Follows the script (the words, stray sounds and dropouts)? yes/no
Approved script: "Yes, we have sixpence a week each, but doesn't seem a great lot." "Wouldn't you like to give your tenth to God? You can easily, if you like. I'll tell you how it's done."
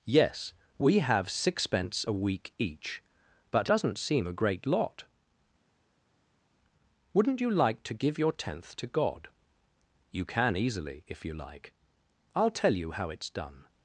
yes